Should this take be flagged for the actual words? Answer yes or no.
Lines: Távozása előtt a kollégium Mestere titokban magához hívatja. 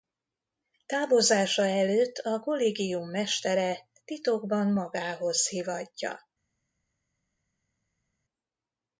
no